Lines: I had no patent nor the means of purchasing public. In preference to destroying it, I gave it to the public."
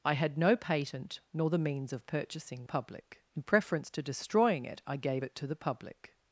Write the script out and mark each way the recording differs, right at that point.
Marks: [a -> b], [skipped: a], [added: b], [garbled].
I had no patent nor the means of purchasing public. In preference to destroying it, I gave it to the public."